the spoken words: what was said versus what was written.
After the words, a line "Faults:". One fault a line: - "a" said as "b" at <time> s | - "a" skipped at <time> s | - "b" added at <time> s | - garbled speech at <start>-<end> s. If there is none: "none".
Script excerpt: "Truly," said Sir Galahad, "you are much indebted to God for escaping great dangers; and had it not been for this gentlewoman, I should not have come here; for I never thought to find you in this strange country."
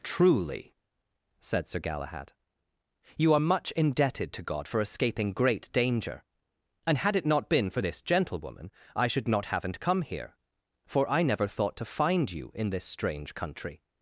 "Truly," said Sir Galahad, "you are much indebted to God for escaping great danger; and had it not been for this gentlewoman, I should not haven't come here; for I never thought to find you in this strange country."
Faults:
- "dangers" said as "danger" at 5.7 s
- "have" said as "haven't" at 9.5 s